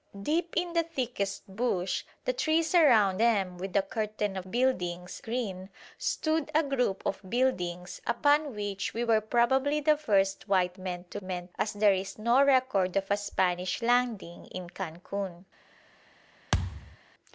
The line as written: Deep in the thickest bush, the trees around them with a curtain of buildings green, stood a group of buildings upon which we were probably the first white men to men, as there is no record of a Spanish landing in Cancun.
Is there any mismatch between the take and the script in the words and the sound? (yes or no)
yes